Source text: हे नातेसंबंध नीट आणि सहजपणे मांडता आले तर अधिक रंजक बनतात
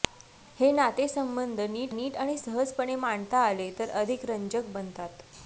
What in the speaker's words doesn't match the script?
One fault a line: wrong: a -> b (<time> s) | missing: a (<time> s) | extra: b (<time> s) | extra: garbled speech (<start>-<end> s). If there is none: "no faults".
extra: नीट (1.9 s)